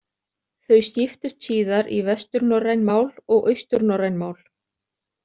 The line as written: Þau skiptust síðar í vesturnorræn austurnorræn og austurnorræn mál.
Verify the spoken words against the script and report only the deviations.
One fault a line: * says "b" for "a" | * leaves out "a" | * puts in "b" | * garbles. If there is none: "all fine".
* says "mál" for "austurnorræn"